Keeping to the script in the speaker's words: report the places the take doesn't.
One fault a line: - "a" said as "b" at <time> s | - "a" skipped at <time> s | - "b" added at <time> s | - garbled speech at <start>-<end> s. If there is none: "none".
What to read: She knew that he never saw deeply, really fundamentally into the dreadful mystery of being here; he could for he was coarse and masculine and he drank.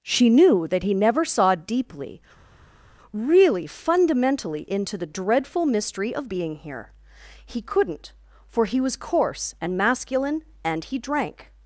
- "could" said as "couldn't" at 7.6 s